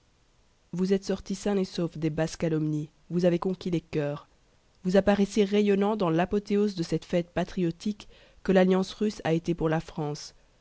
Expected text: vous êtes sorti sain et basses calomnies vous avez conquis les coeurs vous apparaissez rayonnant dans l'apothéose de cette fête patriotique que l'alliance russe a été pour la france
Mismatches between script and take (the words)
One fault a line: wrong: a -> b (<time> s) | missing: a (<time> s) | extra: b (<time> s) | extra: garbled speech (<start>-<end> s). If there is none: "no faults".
extra: sauf des (1.6 s)